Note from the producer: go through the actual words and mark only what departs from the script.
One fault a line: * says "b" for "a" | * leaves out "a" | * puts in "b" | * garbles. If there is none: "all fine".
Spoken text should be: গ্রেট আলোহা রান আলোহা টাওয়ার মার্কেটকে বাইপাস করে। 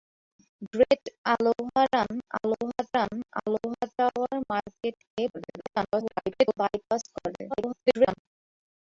* puts in "রান আলোহা"
* garbles
* garbles